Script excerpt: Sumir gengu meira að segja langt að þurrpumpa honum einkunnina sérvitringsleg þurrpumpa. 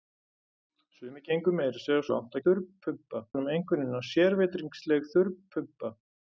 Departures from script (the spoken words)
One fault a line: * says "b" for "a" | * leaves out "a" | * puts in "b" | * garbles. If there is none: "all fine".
all fine